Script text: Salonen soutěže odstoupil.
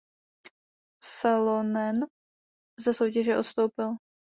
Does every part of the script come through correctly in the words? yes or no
no